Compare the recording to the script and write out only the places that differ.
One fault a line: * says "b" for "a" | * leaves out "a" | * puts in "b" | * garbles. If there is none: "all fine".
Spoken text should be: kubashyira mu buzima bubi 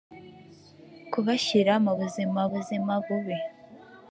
* puts in "buzima"